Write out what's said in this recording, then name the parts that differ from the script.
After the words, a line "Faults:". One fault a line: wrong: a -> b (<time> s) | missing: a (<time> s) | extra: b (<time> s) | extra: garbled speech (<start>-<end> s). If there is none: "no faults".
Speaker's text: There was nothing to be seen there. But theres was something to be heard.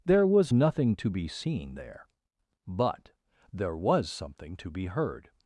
There was nothing to be seen there. But there was something to be heard.
Faults:
wrong: theres -> there (3.5 s)